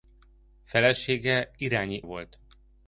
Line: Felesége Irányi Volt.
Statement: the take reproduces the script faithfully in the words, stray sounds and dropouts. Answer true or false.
true